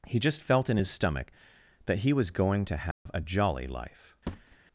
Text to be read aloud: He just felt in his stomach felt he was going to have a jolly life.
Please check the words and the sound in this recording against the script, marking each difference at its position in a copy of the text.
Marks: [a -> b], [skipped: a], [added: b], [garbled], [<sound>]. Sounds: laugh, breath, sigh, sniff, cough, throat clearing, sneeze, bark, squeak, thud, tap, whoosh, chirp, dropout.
He just felt in his stomach [felt -> that] he was going to have [dropout] a jolly life. [thud]